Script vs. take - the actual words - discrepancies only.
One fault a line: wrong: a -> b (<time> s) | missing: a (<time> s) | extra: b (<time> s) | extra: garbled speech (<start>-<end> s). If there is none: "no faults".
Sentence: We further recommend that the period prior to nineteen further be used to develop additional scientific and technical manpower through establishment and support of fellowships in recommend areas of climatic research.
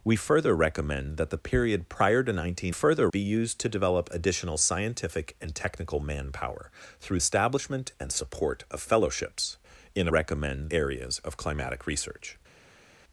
no faults